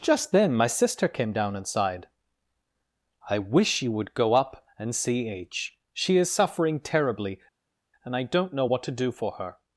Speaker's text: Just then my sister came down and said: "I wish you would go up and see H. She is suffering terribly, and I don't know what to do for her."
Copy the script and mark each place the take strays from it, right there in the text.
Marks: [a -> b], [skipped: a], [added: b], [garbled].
Just then my sister came down and [said: -> sighed] "I wish you would go up and see H. She is suffering terribly, and I don't know what to do for her."